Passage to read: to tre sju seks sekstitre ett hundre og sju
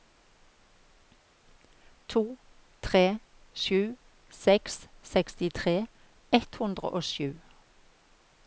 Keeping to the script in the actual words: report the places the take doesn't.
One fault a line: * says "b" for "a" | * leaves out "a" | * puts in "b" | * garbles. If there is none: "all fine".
all fine